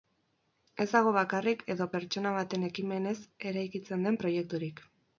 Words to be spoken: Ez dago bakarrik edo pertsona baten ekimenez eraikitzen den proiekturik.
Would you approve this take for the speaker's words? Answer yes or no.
yes